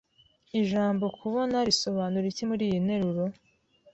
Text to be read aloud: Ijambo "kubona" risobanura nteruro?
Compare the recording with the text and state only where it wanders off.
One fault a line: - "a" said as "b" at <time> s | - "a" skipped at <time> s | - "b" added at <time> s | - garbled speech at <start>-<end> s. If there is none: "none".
- "iki muriyi" added at 2.3 s